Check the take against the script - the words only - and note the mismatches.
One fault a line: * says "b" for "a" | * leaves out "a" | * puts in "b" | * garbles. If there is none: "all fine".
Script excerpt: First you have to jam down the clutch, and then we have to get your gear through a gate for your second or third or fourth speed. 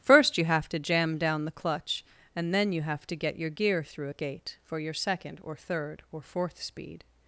* says "you" for "we"